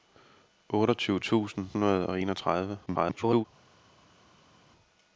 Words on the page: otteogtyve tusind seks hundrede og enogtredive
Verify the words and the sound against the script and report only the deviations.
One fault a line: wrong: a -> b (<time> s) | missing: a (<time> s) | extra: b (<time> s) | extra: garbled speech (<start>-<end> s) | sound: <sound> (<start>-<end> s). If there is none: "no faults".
missing: seks (1.7 s)
extra: garbled speech (2.9-3.4 s)